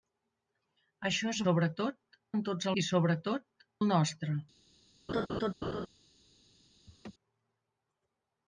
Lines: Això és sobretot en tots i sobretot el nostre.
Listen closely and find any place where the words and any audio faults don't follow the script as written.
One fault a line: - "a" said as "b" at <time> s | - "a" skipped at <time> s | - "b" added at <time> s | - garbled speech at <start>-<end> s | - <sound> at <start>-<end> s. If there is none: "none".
- laugh at 5.1-5.9 s
- laugh at 6.9-7.1 s